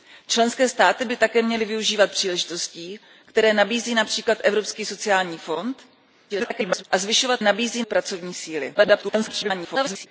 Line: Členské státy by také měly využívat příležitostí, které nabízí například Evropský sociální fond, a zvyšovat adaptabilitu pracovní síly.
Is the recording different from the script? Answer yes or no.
yes